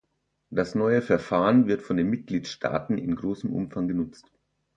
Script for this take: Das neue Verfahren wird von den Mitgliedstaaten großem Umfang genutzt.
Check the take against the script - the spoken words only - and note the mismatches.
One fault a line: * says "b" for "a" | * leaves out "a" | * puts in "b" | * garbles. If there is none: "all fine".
* puts in "in"